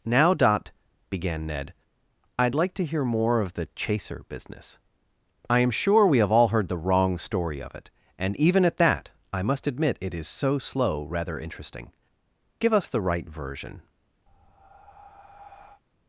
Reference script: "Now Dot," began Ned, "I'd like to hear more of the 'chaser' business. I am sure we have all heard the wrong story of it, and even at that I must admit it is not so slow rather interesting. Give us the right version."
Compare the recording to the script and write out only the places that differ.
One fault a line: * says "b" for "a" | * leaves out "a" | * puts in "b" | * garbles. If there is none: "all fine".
* leaves out "not"